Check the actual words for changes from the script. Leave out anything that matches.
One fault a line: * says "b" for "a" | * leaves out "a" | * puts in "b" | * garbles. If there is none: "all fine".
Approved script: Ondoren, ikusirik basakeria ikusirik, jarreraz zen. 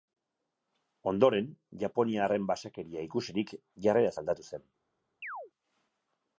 * says "japoniarren" for "ikusirik"
* puts in "aldatu"